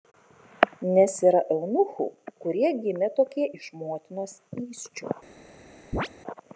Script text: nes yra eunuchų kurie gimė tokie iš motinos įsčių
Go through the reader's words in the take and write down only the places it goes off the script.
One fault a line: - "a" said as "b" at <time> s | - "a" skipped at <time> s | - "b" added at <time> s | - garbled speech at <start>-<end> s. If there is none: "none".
none